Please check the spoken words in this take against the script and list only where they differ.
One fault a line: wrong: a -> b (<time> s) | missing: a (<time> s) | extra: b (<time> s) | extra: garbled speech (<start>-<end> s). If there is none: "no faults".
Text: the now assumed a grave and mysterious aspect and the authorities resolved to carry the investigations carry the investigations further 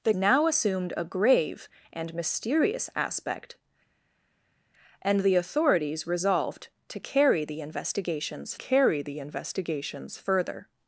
no faults